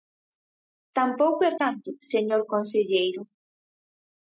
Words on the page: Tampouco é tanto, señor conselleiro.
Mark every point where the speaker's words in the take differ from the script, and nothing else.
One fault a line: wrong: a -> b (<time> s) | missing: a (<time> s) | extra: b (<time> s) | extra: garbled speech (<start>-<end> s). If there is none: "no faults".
no faults